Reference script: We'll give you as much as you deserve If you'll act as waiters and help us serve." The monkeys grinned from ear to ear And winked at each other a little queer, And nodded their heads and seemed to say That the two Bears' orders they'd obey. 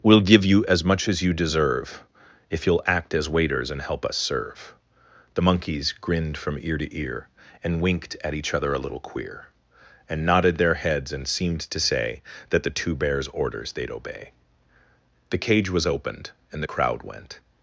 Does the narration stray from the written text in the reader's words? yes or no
yes